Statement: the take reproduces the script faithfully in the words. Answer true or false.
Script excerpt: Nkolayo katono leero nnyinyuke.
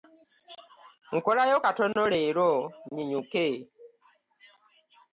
true